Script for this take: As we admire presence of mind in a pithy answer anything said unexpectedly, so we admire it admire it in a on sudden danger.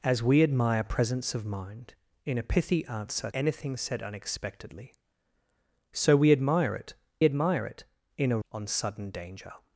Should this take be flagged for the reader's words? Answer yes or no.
no